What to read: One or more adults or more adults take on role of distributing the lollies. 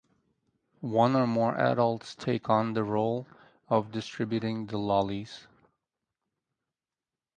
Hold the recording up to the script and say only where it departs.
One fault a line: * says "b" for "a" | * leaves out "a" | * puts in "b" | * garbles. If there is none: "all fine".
* leaves out "or more adults"
* puts in "the"